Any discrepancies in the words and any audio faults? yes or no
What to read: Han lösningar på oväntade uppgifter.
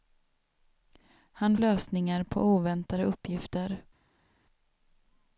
no